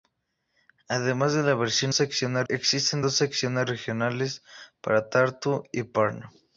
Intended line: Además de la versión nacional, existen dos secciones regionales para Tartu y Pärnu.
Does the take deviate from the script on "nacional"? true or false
true